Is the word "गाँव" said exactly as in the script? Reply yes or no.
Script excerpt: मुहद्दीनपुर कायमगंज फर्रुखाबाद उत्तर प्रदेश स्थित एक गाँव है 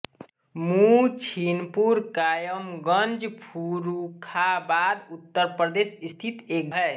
no